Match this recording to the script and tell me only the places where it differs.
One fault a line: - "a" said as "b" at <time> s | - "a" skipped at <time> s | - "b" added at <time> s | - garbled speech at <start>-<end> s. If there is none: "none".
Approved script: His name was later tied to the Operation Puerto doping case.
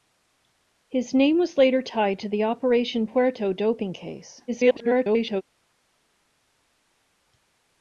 - garbled speech at 4.5-5.4 s